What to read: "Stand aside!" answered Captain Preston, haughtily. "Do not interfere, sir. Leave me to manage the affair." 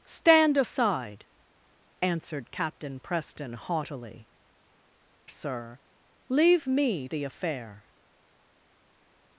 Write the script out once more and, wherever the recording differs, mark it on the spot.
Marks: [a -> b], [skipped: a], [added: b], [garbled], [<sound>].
"Stand aside!" answered Captain Preston, haughtily. [skipped: "Do not interfere,] sir. Leave me [skipped: to manage] the affair."